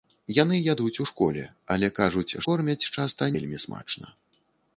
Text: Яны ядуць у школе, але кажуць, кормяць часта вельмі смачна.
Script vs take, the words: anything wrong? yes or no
no